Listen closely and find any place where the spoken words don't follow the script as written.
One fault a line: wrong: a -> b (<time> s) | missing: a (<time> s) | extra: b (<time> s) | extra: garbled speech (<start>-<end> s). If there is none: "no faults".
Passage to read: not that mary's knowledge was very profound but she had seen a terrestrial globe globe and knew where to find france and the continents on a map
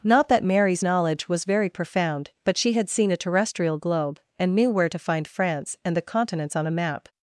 missing: globe (4.2 s)